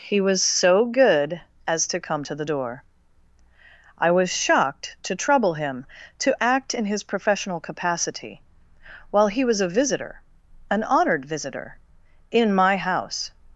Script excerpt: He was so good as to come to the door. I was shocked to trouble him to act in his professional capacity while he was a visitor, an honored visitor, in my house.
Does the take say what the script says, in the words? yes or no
yes